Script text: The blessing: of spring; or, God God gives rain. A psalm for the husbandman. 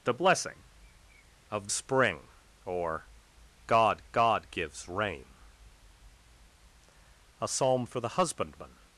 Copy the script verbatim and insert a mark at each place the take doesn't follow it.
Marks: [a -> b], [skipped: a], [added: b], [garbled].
The blessing: of spring; or, God God gives rain. A psalm for the husbandman.